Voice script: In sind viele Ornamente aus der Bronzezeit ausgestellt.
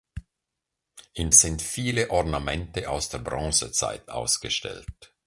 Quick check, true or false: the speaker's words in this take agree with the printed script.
true